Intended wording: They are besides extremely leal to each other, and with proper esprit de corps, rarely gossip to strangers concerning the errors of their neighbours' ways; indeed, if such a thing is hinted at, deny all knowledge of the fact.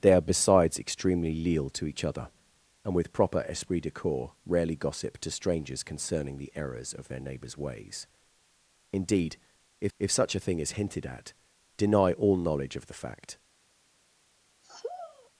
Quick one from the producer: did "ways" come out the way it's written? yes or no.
yes